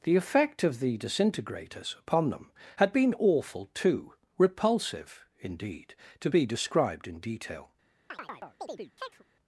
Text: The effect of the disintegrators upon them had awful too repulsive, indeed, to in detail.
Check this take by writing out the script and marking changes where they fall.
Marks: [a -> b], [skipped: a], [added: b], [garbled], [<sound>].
The effect of the disintegrators upon them had [added: been] awful too repulsive, indeed, to [added: be described] in detail. [chirp]